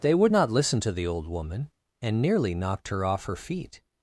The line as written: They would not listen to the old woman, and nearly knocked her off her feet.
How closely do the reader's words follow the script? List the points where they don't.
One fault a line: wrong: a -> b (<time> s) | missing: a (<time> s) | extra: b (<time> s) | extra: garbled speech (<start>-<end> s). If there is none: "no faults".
no faults